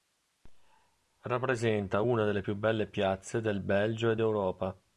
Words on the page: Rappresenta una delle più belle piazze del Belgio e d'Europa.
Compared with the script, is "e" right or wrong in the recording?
right